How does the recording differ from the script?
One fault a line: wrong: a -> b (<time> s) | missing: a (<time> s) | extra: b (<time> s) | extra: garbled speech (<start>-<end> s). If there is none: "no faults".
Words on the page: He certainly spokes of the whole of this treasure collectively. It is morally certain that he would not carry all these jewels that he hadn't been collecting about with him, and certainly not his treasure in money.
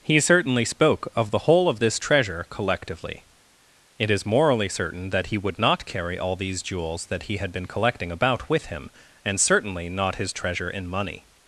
wrong: spokes -> spoke (0.7 s)
wrong: hadn't -> had (7.4 s)